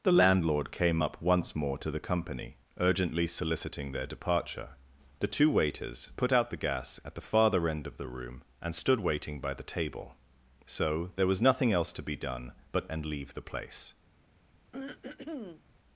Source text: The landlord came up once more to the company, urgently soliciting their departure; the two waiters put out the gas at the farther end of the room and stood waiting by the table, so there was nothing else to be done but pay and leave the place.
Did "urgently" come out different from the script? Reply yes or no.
no